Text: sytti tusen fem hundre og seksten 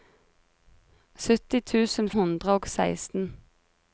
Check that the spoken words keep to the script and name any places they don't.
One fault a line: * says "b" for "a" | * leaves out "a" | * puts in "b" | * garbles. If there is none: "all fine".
* leaves out "fem"